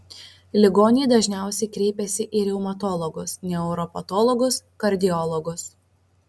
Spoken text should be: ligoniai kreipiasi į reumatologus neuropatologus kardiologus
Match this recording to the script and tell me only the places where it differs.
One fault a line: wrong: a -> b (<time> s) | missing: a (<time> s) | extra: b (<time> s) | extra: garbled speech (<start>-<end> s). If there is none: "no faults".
extra: dažniausiai (1.1 s)